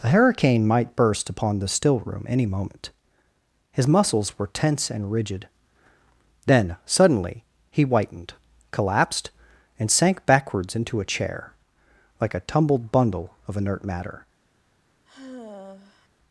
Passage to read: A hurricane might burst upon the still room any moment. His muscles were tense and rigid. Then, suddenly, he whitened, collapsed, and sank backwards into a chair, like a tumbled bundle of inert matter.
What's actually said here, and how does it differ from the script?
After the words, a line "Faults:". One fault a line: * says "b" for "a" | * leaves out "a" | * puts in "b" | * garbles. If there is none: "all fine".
The hurricane might burst upon the still room any moment. His muscles were tense and rigid. Then, suddenly, he whitened, collapsed, and sank backwards into a chair, like a tumbled bundle of inert matter.
Faults:
* says "The" for "A"